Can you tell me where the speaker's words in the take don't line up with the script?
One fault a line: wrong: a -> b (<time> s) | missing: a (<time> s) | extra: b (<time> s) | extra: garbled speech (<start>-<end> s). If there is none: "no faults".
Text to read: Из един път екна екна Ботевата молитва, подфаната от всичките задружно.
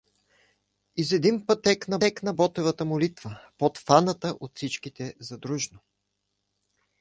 no faults